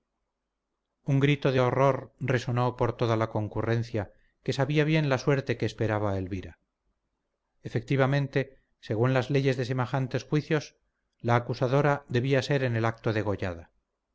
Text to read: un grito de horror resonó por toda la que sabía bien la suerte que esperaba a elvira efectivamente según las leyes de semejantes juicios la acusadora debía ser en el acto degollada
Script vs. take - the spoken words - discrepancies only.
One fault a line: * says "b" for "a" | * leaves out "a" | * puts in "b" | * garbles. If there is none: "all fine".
* puts in "concurrencia"